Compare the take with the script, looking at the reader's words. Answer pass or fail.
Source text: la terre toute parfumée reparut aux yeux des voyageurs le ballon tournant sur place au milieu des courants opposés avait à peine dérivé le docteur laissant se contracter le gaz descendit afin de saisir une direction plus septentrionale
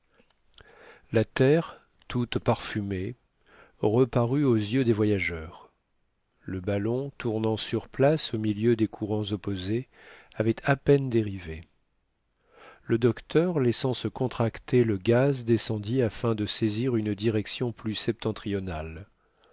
pass